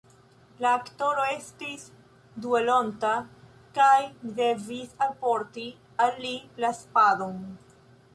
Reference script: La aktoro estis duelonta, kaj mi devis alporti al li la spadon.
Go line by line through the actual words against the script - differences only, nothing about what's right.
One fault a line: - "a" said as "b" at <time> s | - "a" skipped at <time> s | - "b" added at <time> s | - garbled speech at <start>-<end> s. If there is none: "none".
none